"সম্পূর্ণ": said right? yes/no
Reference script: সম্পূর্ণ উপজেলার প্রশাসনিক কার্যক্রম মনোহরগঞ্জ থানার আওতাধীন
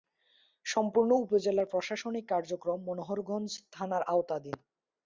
yes